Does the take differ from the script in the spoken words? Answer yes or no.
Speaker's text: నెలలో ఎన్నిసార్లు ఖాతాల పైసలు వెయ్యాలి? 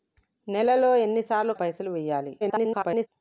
yes